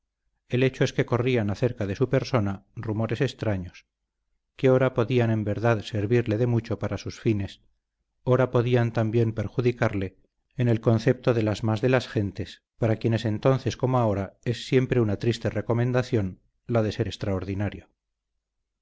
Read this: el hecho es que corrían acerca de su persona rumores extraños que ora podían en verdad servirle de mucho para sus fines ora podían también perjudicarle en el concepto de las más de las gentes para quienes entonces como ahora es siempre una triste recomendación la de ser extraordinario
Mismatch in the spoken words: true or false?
false